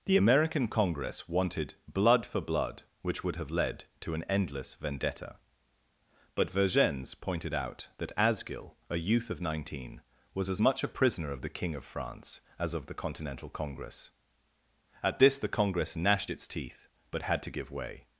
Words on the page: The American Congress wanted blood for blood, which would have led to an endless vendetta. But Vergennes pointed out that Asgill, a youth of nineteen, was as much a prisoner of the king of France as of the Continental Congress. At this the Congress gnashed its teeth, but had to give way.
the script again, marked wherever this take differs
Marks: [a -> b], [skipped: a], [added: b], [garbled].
The American Congress wanted blood for blood, which would have led to an endless vendetta. But Vergennes pointed out that Asgill, a youth of nineteen, was as much a prisoner of the king of France as of the Continental Congress. At this the Congress gnashed its teeth, but had to give way.